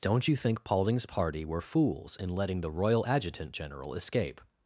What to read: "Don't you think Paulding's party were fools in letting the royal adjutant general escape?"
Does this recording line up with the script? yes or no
yes